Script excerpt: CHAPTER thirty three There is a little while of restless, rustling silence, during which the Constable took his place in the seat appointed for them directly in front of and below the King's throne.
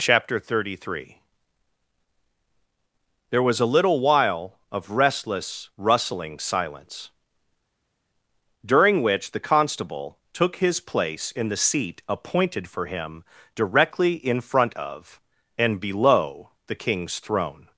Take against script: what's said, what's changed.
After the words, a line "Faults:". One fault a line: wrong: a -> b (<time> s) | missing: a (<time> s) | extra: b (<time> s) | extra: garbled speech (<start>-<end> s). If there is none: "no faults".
CHAPTER thirty three There was a little while of restless, rustling silence, during which the Constable took his place in the seat appointed for him directly in front of and below the King's throne.
Faults:
wrong: is -> was (3.4 s)
wrong: them -> him (12.8 s)